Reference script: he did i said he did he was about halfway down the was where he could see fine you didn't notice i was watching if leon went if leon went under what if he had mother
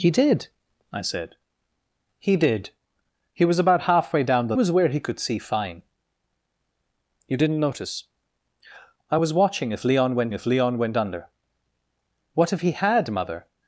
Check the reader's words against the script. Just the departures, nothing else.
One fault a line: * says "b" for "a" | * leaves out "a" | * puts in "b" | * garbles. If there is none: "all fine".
all fine